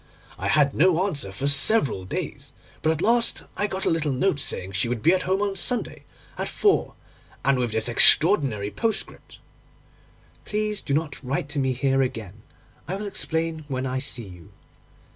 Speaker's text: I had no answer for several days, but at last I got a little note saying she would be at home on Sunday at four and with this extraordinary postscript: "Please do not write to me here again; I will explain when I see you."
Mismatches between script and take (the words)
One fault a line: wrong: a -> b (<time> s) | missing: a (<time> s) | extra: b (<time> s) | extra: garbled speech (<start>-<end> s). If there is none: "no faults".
no faults